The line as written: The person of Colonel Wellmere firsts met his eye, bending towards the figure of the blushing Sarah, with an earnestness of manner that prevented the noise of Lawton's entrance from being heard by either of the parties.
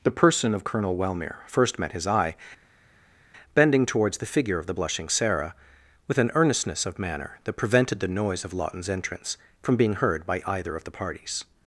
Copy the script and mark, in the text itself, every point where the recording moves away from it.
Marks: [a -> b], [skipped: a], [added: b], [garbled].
The person of Colonel Wellmere [firsts -> first] met his eye, bending towards the figure of the blushing Sarah, with an earnestness of manner that prevented the noise of Lawton's entrance from being heard by either of the parties.